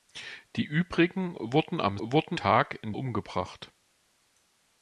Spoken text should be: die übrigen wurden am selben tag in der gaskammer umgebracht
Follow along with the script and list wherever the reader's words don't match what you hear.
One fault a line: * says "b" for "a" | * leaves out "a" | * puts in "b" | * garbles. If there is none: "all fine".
* says "wurden" for "selben"
* leaves out "der gaskammer"